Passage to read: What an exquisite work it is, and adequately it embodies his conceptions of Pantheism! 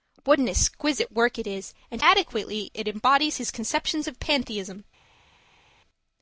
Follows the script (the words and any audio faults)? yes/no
yes